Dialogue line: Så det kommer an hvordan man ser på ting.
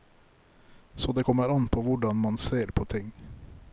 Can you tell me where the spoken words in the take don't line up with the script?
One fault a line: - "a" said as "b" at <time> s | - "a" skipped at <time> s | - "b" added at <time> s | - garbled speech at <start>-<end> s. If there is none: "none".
- "på" added at 1.7 s